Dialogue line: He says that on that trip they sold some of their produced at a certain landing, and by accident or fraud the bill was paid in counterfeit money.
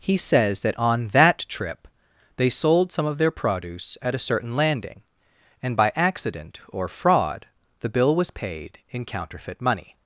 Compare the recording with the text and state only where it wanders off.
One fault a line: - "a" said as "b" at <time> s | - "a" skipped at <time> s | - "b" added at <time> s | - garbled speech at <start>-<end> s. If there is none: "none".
- "produced" said as "produce" at 3.3 s